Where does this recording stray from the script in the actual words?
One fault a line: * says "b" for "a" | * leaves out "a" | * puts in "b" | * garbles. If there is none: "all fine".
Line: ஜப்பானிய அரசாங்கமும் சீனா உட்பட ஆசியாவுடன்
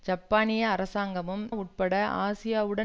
* leaves out "சீனா"